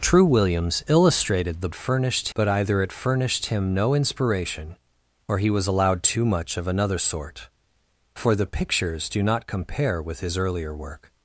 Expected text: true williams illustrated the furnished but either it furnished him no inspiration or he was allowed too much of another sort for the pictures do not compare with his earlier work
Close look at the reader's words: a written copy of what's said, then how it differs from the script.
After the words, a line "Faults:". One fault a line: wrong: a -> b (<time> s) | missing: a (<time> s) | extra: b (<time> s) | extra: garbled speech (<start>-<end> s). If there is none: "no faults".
true williams illustrated the furnished but either it furnished him no inspiration or he was allowed too much of another sort for the pictures do not compare with his earlier work
Faults:
no faults